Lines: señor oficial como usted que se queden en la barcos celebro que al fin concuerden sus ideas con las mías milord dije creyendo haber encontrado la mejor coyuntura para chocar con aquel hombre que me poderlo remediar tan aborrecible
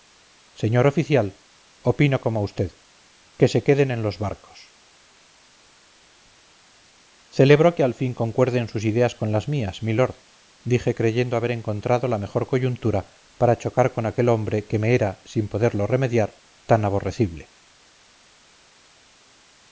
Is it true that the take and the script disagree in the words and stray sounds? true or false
true